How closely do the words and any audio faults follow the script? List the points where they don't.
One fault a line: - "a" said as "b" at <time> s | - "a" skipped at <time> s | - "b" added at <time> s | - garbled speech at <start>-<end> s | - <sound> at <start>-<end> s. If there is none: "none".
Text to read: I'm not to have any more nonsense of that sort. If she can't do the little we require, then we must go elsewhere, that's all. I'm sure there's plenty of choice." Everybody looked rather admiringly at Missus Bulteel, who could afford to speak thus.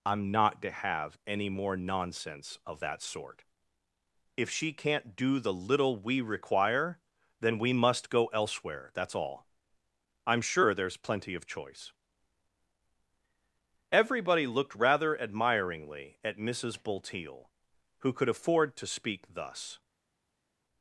none